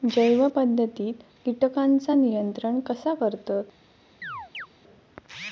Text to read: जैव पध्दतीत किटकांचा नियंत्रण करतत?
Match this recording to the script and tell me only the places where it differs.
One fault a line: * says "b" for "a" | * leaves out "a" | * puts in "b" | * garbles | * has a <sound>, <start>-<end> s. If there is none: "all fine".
* puts in "कसा"
* has a chirp, 4.2-4.7 s